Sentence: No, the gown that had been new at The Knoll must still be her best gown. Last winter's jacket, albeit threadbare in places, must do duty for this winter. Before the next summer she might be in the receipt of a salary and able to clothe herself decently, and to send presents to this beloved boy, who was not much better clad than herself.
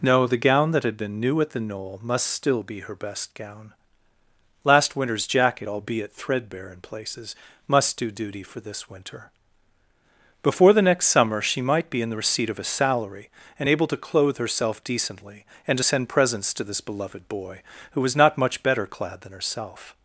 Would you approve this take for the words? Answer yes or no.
yes